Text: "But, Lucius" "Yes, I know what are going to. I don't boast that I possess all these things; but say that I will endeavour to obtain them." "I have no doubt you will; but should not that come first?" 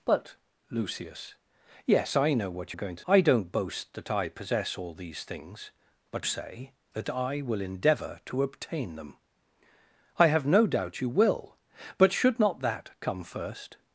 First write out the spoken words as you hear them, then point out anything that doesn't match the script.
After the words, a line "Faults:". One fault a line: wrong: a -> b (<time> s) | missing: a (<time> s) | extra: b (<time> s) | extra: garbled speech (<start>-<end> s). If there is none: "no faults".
"But, Lucius" "Yes, I know what are going to. I don't boast that I possess all these things; but say that I will endeavour to obtain them." "I have no doubt you will; but should not that come first?"
Faults:
no faults